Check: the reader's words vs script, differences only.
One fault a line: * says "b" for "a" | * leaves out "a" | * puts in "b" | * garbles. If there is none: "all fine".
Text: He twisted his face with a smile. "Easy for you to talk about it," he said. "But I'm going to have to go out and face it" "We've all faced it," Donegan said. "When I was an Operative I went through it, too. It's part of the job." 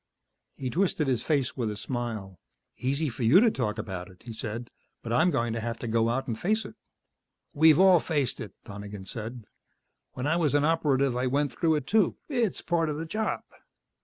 all fine